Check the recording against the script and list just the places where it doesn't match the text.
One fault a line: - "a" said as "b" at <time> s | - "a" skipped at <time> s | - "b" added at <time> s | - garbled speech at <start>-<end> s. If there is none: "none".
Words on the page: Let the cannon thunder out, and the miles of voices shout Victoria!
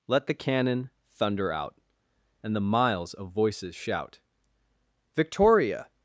none